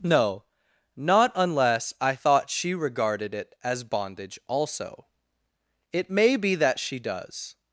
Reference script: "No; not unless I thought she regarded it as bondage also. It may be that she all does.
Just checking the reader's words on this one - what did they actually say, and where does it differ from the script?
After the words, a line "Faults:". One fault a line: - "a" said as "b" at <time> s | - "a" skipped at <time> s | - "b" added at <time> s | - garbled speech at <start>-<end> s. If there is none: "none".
"No; not unless I thought she regarded it as bondage also. It may be that she does.
Faults:
- "all" skipped at 7.0 s